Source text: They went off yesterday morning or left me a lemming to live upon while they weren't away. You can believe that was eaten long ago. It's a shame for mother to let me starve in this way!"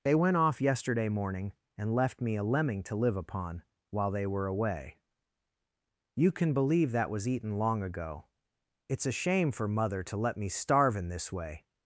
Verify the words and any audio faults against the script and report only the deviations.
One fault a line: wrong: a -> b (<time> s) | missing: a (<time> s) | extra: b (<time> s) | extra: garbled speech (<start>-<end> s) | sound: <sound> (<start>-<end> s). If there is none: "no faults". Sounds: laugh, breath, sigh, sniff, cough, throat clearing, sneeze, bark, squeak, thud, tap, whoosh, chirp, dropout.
wrong: or -> and (1.8 s)
wrong: weren't -> were (4.2 s)